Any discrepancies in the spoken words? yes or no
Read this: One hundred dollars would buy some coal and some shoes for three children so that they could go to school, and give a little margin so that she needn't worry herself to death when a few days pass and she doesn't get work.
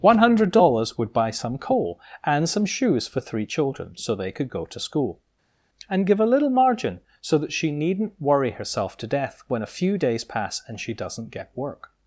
yes